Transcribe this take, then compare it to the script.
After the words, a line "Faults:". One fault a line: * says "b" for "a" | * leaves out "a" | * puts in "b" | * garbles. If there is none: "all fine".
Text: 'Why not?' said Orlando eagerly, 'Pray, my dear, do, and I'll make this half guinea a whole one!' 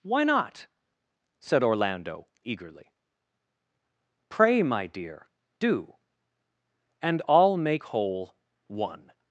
'Why not?' said Orlando eagerly, 'Pray, my dear, do, and I'll make whole one!'
Faults:
* leaves out "this half guinea a"